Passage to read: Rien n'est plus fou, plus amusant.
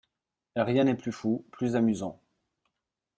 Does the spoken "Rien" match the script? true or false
true